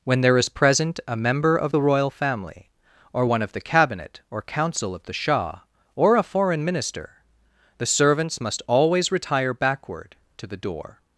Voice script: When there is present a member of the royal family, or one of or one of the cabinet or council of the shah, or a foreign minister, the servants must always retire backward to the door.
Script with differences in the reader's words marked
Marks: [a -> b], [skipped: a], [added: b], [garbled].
When there is present a member of the royal family, or one of [skipped: or one of] the cabinet or council of the shah, or a foreign minister, the servants must always retire backward to the door.